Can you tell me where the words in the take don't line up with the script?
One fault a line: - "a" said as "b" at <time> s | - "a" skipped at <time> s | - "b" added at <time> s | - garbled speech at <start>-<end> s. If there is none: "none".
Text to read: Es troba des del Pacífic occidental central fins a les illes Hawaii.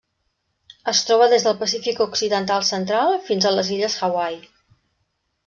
none